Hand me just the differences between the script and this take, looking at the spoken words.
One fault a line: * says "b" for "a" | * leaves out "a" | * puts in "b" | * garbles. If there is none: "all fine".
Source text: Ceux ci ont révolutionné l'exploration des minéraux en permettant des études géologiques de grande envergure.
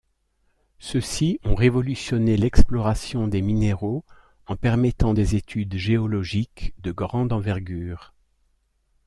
all fine